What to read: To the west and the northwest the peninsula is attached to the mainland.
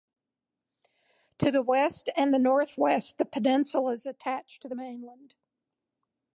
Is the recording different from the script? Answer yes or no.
no